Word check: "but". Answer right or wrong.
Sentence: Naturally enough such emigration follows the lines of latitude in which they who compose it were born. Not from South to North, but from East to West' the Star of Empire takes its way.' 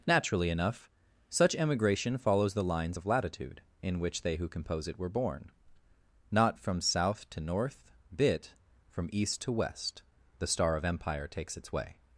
wrong